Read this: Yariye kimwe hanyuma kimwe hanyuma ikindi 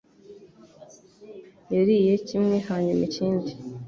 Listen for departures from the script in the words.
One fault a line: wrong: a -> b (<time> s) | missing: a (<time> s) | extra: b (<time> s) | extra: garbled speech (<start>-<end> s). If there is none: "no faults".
missing: kimwe hanyuma (3.0 s)